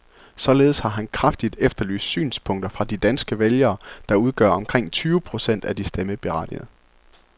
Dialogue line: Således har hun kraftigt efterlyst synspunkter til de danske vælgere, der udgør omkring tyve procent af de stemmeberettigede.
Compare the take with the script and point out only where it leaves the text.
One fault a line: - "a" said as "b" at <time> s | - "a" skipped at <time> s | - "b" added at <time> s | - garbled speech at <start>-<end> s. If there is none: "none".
- "hun" said as "han" at 0.9 s
- "til" said as "fra" at 2.7 s